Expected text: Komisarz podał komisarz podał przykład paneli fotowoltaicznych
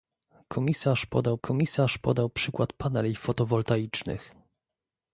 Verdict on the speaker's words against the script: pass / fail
pass